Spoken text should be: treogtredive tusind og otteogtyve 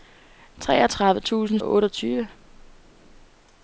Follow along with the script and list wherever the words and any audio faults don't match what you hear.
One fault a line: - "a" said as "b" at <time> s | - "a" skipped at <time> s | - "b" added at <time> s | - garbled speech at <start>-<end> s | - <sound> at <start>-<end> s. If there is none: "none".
none